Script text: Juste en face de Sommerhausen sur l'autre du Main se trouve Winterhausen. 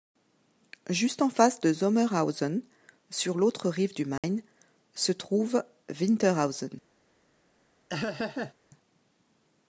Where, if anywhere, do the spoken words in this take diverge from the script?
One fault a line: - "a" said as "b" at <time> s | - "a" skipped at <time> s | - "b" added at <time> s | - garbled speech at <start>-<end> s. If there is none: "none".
- "rive" added at 3.7 s